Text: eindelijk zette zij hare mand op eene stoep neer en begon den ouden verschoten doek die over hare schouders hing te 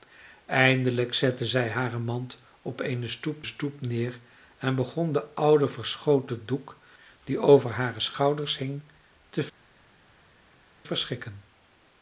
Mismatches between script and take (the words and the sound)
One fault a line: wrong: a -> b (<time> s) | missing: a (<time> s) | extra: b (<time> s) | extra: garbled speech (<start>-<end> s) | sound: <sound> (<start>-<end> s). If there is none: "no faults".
extra: stoep (3.4 s)